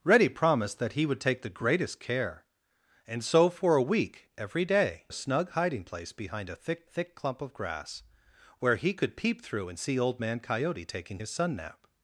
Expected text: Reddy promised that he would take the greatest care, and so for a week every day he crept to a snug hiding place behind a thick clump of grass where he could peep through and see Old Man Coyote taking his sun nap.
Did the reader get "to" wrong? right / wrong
wrong